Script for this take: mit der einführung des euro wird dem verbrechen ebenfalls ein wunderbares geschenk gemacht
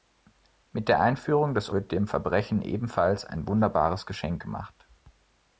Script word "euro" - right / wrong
wrong